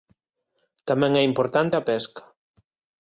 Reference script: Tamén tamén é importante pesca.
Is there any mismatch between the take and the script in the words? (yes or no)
yes